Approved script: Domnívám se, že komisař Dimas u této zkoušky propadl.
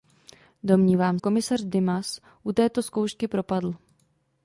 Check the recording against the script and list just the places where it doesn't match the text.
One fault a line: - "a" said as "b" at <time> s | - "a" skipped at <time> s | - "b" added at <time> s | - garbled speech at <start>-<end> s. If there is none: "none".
- "se že" skipped at 1.2 s